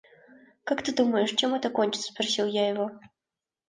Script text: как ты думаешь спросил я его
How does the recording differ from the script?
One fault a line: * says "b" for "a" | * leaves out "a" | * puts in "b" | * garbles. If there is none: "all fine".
* puts in "чем это кончится"